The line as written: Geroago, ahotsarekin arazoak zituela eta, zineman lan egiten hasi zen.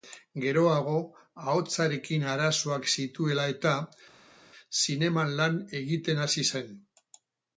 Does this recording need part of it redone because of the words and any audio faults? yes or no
no